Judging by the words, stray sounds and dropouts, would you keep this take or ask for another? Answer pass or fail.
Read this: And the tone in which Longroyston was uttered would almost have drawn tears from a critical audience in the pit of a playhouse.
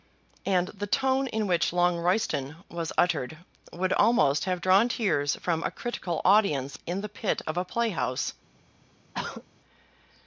fail